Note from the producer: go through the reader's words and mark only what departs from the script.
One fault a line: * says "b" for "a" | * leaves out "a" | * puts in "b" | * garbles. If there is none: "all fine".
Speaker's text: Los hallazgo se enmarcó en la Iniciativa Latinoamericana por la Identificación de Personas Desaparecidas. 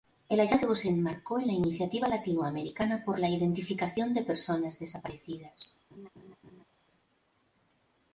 * says "El" for "Los"